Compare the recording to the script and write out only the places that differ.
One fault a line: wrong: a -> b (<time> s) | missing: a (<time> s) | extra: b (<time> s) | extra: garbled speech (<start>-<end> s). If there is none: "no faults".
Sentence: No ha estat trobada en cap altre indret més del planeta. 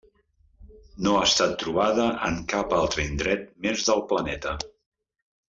no faults